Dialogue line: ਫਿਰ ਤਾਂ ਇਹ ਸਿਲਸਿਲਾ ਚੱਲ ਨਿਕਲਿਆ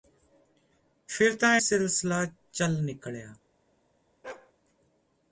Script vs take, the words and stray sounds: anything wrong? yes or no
yes